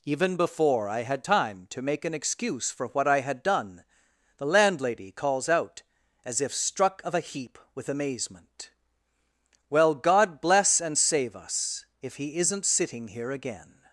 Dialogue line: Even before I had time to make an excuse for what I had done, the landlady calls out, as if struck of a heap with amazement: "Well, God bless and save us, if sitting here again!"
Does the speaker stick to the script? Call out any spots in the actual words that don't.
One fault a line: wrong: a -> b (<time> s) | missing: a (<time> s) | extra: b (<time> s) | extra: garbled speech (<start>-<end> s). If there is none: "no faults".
extra: he isn't (12.1 s)